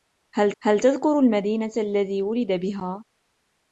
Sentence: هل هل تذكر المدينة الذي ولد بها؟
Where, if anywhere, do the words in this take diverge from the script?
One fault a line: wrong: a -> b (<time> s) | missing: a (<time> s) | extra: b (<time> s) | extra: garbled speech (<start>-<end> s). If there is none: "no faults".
no faults